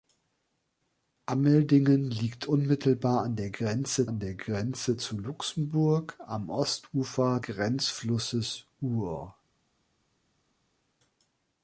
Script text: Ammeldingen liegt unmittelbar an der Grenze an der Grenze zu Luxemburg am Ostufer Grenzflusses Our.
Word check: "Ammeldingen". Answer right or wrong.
right